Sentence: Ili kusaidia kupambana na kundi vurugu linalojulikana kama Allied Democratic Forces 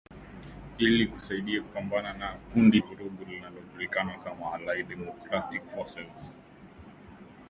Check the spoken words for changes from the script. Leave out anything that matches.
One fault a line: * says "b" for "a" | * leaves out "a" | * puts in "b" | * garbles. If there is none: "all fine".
all fine